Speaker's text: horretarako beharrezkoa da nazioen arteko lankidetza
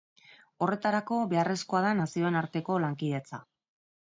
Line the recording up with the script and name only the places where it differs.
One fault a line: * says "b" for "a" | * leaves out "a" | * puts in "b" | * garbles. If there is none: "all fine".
all fine